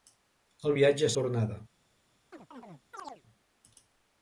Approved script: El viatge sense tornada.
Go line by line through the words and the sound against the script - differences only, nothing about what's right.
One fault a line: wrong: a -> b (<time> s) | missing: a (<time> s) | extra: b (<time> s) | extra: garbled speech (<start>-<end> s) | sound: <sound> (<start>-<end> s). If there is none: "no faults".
missing: sense (1.1 s)
sound: chirp (2.3-3.2 s)